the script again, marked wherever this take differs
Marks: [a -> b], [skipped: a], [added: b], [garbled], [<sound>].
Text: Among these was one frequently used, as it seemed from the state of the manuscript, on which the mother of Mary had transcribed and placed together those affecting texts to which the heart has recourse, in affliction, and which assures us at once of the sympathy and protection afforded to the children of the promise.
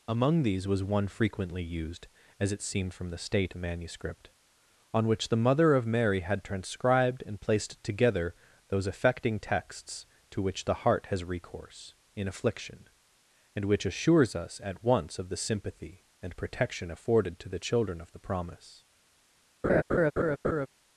Among these was one frequently used, as it seemed from the state [skipped: of] the manuscript, on which the mother of Mary had transcribed and placed together those affecting texts to which the heart has recourse, in affliction, and which assures us at once of the sympathy and protection afforded to the children of the promise. [laugh]